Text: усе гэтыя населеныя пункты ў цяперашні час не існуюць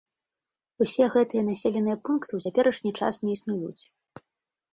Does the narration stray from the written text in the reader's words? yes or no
no